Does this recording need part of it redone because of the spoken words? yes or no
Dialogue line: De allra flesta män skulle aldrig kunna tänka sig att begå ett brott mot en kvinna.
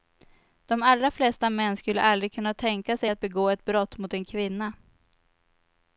no